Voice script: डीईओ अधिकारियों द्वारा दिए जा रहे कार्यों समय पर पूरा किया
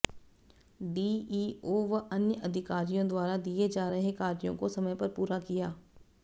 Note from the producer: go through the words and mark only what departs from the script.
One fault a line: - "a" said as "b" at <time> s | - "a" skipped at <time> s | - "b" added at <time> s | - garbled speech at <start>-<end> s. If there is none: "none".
- "व अन्य" added at 1.9 s
- "को" added at 4.6 s